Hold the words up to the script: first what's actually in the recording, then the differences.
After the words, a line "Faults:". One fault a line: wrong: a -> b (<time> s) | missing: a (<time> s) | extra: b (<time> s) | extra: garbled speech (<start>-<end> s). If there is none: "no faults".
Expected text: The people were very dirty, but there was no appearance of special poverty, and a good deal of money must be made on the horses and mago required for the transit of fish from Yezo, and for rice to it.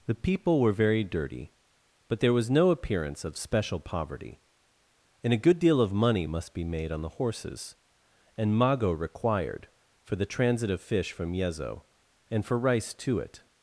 The people were very dirty, but there was no appearance of special poverty, and a good deal of money must be made on the horses and mago required for the transit of fish from Yezo, and for rice to it.
Faults:
no faults